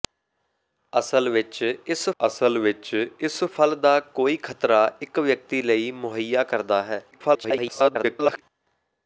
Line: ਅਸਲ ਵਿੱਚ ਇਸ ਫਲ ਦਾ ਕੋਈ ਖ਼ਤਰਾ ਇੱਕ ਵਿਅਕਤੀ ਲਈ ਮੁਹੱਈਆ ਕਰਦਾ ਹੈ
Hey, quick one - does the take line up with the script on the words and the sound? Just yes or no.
no